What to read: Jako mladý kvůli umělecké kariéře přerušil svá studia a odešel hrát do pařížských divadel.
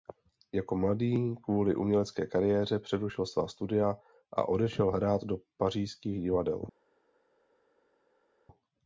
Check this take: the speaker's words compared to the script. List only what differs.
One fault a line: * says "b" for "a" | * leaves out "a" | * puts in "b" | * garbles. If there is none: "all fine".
all fine